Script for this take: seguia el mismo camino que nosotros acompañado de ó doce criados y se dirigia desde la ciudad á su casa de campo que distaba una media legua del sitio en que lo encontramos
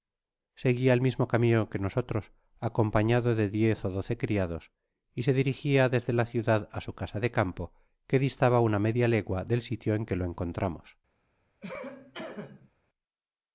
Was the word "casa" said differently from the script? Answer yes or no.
no